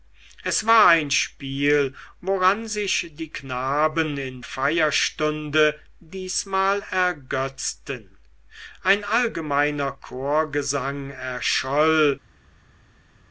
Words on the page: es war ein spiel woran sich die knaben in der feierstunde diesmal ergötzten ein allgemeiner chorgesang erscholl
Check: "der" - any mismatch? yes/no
yes